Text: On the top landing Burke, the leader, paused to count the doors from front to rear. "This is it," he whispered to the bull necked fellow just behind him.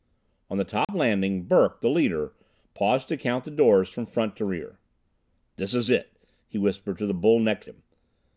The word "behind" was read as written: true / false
false